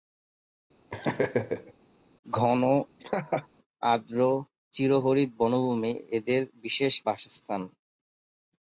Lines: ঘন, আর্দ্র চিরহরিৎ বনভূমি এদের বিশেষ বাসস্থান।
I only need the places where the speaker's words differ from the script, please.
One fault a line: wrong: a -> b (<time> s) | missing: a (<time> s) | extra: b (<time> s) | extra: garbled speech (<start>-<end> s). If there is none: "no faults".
no faults